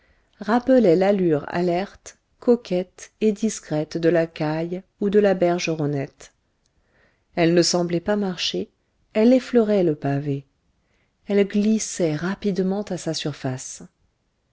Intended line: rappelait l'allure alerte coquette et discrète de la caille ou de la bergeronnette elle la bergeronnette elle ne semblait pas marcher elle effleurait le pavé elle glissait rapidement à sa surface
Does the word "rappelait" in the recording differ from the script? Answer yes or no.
no